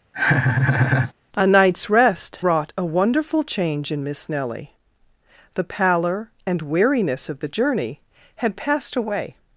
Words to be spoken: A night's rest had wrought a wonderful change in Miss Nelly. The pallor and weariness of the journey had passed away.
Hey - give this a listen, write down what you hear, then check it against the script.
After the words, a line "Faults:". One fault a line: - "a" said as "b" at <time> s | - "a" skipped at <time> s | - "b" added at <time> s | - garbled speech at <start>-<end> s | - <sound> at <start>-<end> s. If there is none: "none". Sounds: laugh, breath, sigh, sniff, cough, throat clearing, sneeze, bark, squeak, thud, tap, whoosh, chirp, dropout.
A night's rest wrought a wonderful change in Miss Nelly. The pallor and weariness of the journey had passed away.
Faults:
- laugh at 0.1-1.1 s
- "had" skipped at 2.4 s